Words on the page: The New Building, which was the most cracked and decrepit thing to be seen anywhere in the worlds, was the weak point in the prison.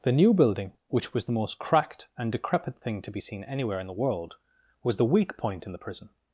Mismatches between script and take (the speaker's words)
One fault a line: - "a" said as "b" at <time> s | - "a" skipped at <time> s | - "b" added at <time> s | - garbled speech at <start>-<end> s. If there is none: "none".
- "worlds" said as "world" at 4.0 s